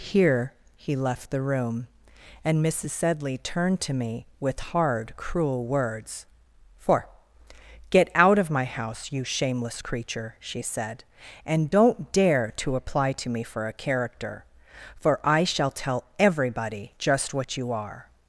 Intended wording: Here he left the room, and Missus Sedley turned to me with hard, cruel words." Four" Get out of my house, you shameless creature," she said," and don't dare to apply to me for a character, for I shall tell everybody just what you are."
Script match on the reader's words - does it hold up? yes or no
yes